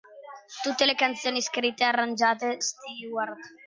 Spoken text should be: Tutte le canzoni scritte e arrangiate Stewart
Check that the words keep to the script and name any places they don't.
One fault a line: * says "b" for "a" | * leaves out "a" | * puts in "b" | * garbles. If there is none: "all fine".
all fine